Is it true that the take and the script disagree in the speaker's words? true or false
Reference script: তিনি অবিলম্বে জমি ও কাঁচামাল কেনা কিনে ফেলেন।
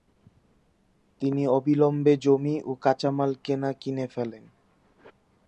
false